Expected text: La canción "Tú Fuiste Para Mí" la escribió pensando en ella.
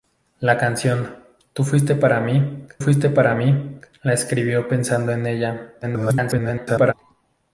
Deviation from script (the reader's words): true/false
true